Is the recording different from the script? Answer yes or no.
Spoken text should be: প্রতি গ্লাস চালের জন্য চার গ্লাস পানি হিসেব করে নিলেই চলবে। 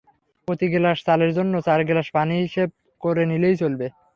no